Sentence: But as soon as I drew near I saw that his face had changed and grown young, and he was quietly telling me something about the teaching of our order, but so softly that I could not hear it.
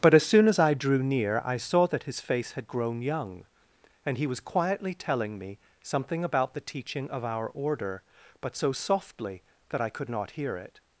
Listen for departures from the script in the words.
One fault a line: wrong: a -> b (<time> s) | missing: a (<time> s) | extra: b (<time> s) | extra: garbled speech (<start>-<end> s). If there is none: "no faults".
missing: changed and (2.7 s)